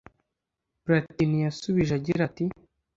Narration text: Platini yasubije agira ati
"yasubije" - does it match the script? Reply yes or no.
yes